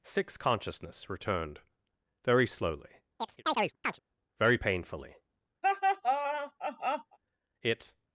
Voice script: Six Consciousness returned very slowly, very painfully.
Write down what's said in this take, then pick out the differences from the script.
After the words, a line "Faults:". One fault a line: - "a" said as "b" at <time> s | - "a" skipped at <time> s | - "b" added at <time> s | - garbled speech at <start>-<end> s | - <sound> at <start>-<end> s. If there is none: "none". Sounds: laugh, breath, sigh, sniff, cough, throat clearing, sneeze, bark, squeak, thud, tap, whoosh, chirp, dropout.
Six Consciousness returned very slowly, very painfully. It
Faults:
- chirp at 3.2-4.0 s
- laugh at 5.6-7.2 s
- "It" added at 7.6 s